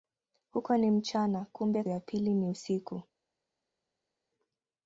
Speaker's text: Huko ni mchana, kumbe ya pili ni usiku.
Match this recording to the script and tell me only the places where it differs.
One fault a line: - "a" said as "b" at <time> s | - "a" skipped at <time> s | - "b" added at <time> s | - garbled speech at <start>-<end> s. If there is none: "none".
none